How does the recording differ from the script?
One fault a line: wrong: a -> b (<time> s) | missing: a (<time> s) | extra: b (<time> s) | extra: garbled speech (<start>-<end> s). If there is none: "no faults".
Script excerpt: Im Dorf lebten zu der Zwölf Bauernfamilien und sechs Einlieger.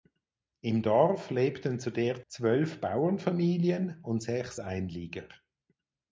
no faults